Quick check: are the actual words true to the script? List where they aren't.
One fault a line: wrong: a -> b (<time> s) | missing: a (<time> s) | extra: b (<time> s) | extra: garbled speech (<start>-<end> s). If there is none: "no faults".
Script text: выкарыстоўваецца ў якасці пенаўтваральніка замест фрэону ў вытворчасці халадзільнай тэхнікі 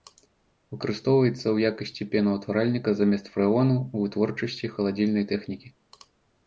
no faults